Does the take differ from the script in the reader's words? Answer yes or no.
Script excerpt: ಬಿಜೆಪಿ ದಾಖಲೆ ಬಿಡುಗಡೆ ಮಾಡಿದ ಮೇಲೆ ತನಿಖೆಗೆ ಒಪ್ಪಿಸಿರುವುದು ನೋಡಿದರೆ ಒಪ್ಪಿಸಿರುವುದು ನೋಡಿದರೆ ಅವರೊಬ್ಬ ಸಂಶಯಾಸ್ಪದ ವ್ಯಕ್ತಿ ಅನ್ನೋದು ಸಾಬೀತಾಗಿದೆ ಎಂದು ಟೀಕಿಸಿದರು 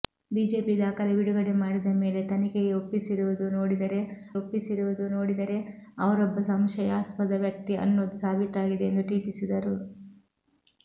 no